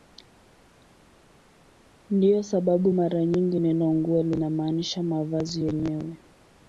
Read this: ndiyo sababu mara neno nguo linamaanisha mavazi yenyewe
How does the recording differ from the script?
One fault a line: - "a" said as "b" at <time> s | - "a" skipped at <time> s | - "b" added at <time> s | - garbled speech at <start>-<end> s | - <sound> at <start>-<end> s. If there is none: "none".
- "nyingi" added at 3.3 s